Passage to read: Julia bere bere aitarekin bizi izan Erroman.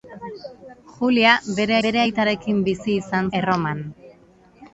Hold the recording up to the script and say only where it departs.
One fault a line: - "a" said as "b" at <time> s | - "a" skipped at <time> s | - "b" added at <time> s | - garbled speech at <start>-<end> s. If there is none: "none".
none